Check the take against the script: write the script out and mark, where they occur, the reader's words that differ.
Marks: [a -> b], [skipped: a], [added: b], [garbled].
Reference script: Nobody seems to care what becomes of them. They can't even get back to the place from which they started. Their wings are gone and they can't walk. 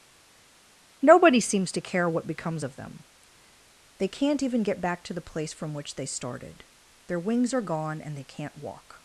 Nobody seems to care what becomes of them. They can't even get back to the place from which they started. Their wings are gone and they can't walk.